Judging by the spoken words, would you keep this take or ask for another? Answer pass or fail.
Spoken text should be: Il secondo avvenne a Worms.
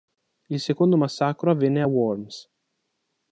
fail